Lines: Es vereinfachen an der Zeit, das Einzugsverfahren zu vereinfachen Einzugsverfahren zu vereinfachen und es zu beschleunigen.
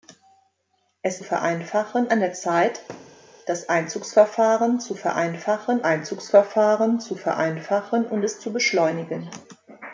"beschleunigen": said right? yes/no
yes